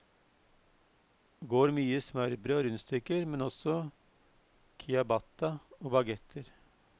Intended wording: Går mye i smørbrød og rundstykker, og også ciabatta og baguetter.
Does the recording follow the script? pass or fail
fail